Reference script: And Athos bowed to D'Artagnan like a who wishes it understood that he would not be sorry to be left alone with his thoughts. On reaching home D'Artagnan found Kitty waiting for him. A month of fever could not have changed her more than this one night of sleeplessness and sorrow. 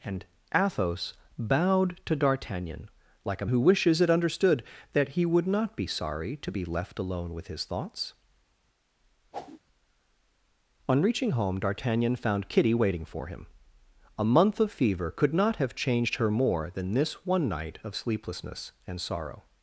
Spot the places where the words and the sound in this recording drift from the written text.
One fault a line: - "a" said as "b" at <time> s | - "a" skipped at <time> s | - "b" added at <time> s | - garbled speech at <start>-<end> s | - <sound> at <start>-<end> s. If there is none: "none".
- whoosh at 9.3-9.6 s